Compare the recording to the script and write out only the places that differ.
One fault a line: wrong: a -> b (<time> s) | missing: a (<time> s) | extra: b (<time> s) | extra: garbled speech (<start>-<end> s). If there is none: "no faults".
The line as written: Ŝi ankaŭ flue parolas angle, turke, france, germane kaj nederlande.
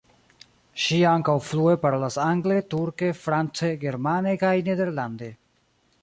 no faults